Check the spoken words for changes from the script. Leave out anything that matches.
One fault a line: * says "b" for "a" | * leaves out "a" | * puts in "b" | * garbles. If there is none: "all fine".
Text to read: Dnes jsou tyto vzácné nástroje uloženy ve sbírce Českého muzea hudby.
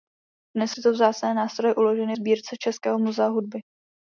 * leaves out "jsou"
* leaves out "ve"